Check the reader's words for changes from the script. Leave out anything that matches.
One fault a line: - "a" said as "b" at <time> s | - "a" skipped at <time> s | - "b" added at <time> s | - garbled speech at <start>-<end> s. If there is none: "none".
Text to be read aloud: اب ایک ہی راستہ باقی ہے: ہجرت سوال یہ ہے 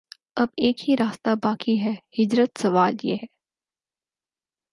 none